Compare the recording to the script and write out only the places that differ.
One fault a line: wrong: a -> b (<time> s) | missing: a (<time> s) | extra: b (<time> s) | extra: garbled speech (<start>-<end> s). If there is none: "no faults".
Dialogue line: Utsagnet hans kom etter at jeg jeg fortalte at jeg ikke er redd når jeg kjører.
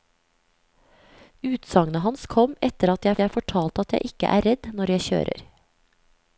no faults